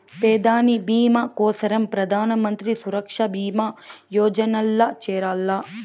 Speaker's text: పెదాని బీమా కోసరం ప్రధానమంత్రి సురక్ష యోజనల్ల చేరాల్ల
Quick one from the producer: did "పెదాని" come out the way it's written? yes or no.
yes